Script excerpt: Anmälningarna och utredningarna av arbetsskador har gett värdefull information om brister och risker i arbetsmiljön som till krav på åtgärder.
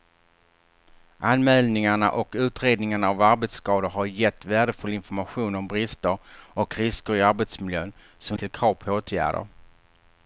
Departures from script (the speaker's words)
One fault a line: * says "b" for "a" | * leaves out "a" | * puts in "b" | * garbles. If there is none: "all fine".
all fine